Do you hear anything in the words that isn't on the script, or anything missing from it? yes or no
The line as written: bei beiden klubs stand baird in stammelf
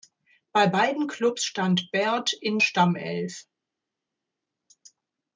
no